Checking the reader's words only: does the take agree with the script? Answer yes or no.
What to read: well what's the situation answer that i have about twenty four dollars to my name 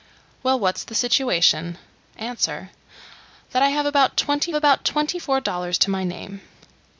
no